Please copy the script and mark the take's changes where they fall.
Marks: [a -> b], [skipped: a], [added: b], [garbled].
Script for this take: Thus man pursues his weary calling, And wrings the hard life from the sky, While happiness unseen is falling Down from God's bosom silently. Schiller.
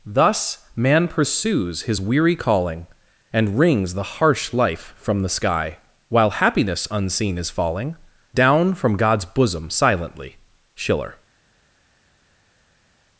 Thus man pursues his weary calling, And wrings the [hard -> harsh] life from the sky, While happiness unseen is falling Down from God's bosom silently. Schiller.